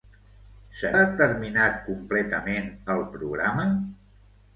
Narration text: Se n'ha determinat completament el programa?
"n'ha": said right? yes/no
no